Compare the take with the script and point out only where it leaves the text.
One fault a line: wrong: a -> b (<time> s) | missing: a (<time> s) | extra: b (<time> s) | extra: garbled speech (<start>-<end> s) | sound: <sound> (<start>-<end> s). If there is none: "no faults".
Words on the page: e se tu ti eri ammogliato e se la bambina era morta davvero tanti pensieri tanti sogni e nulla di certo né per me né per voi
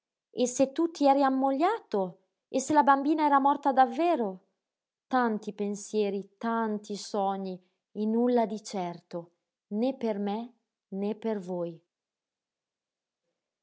no faults